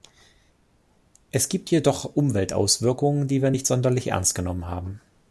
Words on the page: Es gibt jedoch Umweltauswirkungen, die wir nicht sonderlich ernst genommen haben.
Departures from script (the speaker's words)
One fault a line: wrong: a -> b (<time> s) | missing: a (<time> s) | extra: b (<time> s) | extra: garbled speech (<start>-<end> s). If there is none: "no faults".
no faults